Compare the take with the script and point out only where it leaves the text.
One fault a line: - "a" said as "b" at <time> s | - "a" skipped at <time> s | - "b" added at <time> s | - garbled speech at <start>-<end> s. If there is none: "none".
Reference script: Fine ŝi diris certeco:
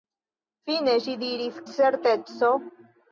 none